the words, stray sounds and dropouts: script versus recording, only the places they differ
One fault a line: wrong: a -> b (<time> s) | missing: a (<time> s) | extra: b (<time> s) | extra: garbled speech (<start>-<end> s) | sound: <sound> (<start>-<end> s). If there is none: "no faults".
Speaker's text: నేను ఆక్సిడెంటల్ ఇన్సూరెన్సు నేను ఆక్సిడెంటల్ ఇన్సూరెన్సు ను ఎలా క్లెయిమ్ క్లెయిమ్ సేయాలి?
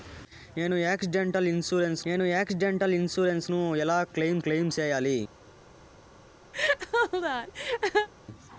sound: laugh (6.5-8.1 s)